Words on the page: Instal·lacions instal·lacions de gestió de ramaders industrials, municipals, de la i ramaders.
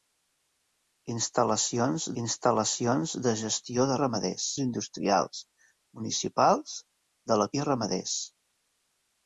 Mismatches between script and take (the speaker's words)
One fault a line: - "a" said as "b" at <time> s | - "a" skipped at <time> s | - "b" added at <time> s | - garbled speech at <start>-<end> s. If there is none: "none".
none